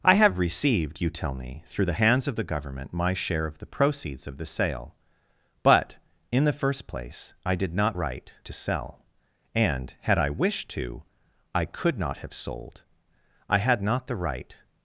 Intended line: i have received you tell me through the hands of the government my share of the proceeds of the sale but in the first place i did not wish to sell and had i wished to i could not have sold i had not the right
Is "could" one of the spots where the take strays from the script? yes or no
no